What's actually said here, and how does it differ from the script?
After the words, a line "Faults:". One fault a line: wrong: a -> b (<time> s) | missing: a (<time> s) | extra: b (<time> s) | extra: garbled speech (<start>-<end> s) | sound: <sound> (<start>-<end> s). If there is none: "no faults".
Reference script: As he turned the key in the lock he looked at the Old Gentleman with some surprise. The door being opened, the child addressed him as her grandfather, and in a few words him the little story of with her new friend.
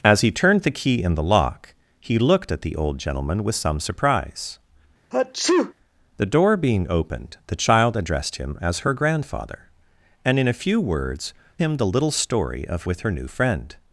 As he turned the key in the lock he looked at the Old Gentleman with some surprise. The door being opened, the child addressed him as her grandfather, and in a few words him the little story of with her new friend.
Faults:
sound: sneeze (5.1-5.7 s)